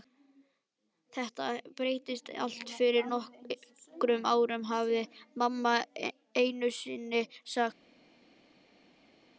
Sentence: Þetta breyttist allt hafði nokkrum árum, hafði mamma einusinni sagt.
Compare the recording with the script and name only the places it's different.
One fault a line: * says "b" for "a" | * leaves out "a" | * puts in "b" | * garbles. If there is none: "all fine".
* says "fyrir" for "hafði"